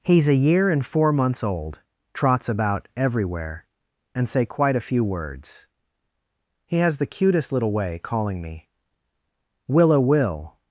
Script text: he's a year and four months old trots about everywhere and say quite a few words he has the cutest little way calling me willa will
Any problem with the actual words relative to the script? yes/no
no